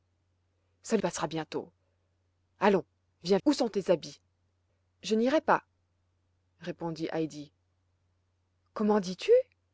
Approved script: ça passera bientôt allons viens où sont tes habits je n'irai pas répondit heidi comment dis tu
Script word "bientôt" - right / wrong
right